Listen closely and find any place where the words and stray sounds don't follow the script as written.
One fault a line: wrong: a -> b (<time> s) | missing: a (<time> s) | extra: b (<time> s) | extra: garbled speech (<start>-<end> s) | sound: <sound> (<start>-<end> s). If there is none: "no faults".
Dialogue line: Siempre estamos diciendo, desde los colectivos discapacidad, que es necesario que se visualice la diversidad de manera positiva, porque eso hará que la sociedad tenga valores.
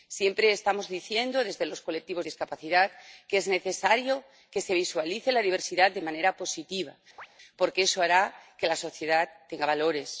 sound: chirp (7.2-7.3 s)